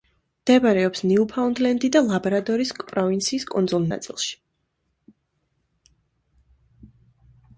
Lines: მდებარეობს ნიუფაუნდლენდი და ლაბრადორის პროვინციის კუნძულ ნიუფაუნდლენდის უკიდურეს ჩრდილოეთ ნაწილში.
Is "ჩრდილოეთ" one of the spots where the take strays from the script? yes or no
yes